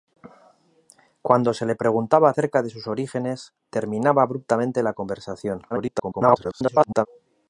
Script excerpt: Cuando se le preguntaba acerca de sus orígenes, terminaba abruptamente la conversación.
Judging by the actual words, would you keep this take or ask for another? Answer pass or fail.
fail